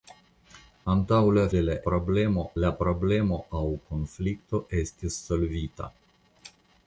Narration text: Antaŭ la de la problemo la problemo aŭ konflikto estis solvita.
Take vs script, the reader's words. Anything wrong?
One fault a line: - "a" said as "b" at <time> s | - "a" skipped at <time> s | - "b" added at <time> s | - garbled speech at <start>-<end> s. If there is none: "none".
none